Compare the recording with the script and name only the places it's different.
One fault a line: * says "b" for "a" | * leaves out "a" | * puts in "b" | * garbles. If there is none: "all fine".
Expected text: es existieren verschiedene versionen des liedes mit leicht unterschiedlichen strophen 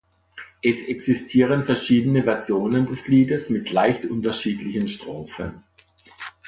all fine